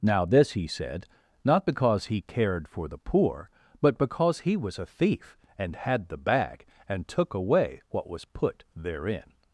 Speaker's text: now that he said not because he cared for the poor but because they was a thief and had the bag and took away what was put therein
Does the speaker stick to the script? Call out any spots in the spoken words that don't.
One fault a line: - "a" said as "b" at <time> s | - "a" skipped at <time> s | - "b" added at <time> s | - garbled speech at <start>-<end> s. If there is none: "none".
- "that" said as "this" at 0.2 s
- "they" said as "he" at 4.4 s